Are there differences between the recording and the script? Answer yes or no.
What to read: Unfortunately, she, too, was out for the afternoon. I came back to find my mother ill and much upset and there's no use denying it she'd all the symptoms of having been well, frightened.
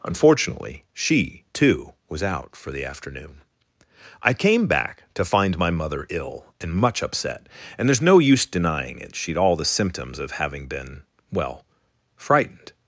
no